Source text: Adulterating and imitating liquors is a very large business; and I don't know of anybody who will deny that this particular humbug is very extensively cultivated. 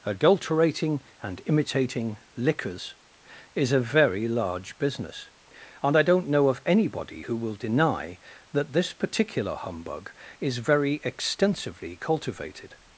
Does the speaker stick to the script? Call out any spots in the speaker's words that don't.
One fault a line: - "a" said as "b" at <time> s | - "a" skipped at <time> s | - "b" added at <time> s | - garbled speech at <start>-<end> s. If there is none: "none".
none